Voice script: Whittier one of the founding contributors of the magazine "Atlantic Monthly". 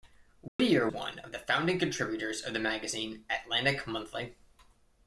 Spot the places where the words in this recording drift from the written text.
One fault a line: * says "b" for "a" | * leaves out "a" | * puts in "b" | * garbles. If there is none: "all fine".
all fine